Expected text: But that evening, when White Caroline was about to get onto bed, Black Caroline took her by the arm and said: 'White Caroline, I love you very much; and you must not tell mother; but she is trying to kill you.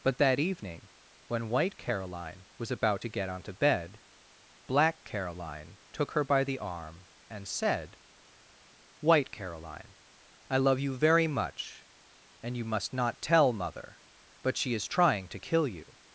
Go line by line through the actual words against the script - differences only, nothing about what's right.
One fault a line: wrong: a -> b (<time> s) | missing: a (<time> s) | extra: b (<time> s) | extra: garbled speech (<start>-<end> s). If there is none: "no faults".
no faults